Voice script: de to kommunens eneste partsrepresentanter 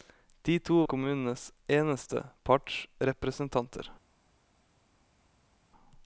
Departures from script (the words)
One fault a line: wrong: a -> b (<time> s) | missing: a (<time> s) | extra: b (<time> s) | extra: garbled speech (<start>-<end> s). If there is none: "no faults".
no faults